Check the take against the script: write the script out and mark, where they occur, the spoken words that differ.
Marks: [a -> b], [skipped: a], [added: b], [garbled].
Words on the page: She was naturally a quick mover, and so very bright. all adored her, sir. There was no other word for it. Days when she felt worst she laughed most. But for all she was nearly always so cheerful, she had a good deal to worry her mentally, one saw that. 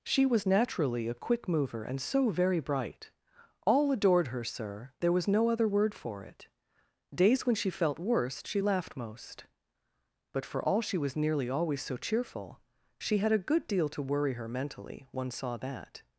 She was naturally a quick mover, and so very bright. all adored her, sir. There was no other word for it. Days when she felt worst she laughed most. But for all she was nearly always so cheerful, she had a good deal to worry her mentally, one saw that.